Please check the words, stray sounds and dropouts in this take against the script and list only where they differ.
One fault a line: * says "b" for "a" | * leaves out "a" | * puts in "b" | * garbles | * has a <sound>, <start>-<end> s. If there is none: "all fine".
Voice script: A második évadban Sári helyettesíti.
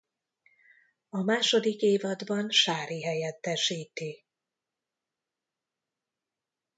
all fine